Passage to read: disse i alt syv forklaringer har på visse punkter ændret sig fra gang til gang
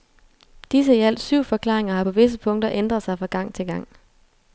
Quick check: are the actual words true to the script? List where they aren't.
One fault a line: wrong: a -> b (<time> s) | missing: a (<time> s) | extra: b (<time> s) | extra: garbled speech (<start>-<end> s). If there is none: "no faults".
no faults